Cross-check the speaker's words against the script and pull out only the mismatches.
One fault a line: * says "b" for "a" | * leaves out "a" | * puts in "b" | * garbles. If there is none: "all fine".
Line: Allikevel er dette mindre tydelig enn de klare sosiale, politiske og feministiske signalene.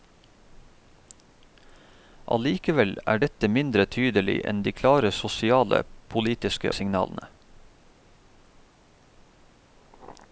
* leaves out "og feministiske"